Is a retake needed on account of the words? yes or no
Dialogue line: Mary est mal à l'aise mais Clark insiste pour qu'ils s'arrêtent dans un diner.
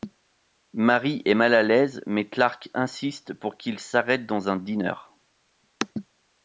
no